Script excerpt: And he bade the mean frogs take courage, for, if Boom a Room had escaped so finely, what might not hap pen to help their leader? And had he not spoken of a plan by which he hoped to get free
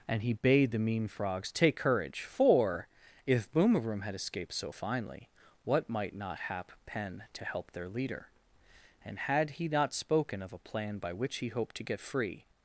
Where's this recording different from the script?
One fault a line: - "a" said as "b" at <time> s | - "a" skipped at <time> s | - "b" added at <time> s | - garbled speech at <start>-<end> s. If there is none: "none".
none